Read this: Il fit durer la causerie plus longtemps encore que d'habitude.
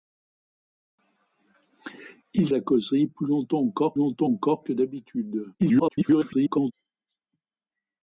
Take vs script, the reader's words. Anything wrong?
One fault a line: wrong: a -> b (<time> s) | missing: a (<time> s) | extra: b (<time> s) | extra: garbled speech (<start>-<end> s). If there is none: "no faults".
missing: fit durer (2.5 s)
extra: longtemps encore (3.9 s)
extra: garbled speech (5.6-6.7 s)